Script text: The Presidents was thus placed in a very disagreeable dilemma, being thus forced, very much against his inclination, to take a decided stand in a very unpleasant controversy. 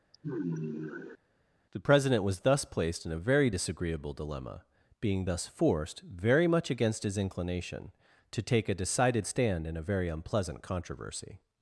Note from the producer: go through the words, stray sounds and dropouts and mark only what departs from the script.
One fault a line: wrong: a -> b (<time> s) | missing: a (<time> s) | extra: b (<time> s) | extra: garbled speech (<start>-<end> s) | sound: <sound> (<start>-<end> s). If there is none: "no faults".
sound: sigh (0.1-1.2 s)
wrong: Presidents -> President (1.8 s)